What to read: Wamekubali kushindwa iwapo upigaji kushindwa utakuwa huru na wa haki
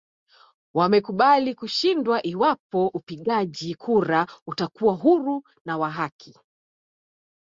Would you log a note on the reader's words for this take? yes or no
yes